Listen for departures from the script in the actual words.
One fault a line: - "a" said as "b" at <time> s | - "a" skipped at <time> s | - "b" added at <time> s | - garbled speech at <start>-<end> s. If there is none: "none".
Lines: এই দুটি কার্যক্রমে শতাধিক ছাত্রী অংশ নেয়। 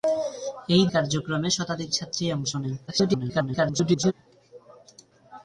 - "দুটি" skipped at 0.8 s
- garbled speech at 2.9-4.1 s